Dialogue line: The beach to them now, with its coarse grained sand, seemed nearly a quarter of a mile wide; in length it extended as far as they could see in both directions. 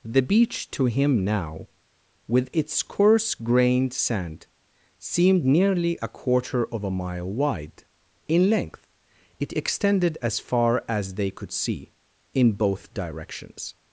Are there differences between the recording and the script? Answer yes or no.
yes